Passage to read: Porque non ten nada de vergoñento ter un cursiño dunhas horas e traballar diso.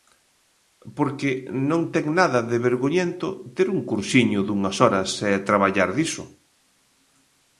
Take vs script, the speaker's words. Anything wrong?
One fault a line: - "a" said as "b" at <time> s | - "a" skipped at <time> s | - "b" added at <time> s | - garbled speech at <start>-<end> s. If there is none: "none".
none